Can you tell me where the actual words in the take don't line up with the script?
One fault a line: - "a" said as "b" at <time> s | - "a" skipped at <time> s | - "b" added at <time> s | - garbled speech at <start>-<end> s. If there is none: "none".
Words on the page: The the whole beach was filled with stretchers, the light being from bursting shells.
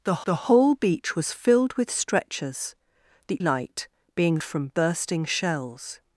none